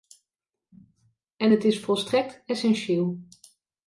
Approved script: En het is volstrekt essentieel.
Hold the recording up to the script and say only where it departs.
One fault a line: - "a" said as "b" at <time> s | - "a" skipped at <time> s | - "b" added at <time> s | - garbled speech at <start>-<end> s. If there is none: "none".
none